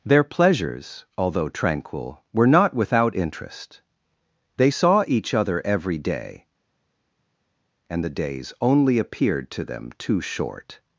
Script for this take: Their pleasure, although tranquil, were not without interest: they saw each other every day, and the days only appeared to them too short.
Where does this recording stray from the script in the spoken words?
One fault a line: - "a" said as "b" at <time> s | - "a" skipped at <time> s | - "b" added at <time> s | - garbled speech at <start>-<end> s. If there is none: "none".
- "pleasure" said as "pleasures" at 0.2 s